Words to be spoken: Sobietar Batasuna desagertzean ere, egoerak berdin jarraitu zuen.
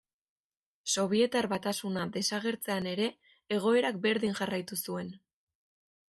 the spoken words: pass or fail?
pass